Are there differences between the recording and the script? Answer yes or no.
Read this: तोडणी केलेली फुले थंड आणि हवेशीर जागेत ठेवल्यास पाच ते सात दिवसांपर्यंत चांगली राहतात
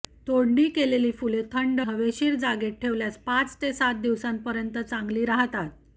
yes